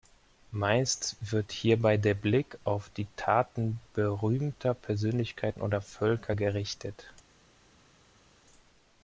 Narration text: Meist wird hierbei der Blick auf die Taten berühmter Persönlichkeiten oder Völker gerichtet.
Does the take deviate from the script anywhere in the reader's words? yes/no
no